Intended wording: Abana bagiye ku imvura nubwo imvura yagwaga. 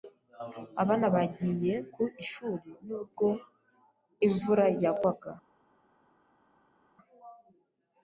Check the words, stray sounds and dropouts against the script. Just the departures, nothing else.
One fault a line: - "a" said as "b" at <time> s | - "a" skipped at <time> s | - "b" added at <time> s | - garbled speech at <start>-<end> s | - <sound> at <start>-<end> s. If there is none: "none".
- "imvura" said as "ishuri" at 2.2 s